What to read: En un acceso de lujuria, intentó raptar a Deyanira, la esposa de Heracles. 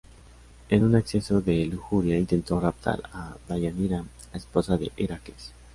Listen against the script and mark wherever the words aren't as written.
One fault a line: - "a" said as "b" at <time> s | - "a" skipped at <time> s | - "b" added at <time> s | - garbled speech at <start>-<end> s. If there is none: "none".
none